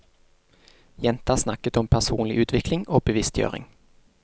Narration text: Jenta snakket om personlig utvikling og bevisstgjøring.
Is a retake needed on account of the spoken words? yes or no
no